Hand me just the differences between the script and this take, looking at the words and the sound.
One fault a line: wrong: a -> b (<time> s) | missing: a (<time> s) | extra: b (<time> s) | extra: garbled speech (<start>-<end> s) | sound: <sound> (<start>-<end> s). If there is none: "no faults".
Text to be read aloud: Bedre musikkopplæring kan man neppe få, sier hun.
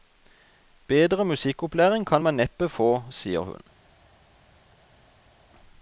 no faults